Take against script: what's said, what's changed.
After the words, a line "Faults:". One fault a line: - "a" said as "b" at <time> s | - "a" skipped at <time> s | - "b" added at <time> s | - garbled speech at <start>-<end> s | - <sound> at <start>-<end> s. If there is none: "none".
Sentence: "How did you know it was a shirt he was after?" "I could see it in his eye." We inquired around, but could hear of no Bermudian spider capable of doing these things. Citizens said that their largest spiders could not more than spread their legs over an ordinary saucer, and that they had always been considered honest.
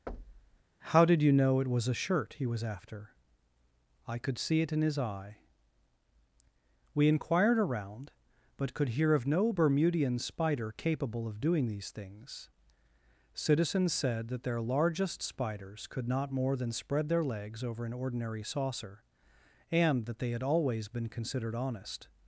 "How did you know it was a shirt he was after?" "I could see it in his eye." We inquired around, but could hear of no Bermudian spider capable of doing these things. Citizens said that their largest spiders could not more than spread their legs over an ordinary saucer, and that they had always been considered honest.
Faults:
- thud at 0.1-0.6 s